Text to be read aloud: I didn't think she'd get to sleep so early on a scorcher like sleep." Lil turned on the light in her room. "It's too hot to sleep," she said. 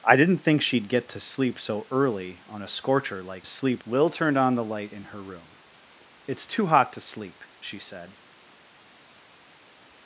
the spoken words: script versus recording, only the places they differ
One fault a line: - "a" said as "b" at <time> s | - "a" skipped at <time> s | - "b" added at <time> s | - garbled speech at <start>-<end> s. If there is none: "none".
none